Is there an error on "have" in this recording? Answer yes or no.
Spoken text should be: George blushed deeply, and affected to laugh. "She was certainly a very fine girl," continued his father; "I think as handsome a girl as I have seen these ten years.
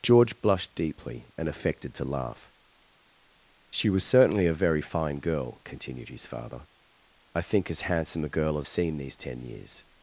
yes